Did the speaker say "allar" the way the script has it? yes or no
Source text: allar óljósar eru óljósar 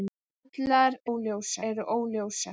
yes